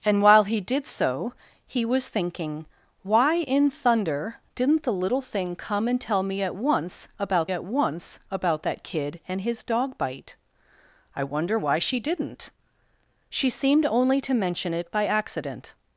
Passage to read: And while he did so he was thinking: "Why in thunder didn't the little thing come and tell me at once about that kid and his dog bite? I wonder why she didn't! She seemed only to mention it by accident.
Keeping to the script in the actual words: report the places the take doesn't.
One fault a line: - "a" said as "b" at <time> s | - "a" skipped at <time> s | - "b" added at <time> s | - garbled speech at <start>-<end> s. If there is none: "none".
- "at once about" added at 7.5 s